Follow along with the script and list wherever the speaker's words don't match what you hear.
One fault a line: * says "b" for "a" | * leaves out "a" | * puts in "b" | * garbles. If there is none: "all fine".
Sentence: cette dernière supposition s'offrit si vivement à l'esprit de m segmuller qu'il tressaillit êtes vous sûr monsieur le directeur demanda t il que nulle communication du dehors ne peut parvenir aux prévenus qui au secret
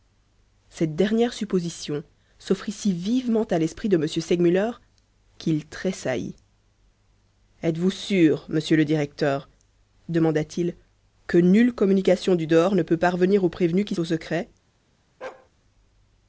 all fine